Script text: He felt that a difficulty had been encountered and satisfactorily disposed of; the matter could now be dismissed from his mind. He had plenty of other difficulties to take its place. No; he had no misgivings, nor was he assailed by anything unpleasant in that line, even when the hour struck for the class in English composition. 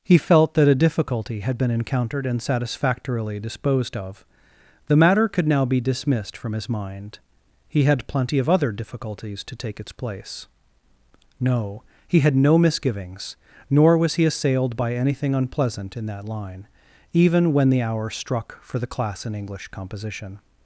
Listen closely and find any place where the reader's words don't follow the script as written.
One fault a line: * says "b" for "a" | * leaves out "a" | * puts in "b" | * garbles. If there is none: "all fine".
all fine